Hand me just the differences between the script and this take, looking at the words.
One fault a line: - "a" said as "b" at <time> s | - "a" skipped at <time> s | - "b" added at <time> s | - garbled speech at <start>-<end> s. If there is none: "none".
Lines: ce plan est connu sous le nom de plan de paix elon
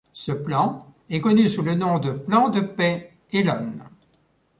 none